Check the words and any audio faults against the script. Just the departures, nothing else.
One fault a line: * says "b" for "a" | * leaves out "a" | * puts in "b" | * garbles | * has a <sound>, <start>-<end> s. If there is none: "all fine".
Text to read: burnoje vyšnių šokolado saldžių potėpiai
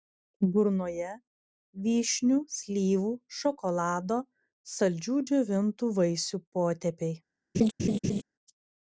* puts in "slyvų"
* puts in "džiovintų vaisių"
* has a laugh, 7.5-8.2 s